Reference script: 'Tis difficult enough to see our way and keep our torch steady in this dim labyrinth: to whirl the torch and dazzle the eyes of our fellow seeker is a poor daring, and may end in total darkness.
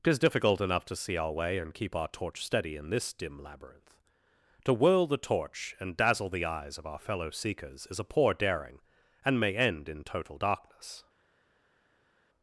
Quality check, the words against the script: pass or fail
fail